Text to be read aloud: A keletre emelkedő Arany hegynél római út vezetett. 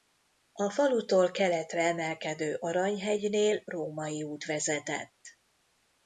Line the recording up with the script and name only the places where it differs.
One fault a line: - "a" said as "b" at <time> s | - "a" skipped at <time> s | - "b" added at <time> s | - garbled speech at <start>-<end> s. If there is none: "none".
- "falutól" added at 0.7 s